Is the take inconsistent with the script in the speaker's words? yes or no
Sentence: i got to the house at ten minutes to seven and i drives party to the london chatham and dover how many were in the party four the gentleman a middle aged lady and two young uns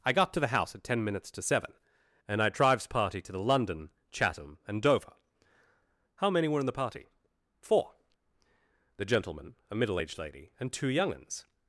no